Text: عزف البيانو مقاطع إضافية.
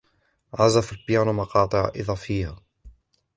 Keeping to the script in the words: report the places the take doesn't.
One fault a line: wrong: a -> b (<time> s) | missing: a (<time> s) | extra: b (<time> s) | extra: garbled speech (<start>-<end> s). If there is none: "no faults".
no faults